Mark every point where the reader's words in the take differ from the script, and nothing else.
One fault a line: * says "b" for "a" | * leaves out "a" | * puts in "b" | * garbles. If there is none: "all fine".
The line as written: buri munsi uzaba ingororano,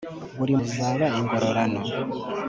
* leaves out "munsi"